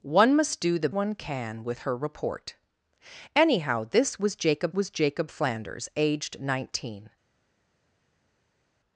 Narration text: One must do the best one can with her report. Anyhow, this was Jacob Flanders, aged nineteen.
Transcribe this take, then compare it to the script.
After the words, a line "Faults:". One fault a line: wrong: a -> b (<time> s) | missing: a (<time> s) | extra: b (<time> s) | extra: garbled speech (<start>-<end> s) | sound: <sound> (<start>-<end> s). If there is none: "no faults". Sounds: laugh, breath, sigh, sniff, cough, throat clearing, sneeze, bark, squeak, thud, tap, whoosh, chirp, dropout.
One must do the one can with her report. Anyhow, this was Jacob was Jacob Flanders, aged nineteen.
Faults:
missing: best (0.9 s)
extra: was Jacob (4.7 s)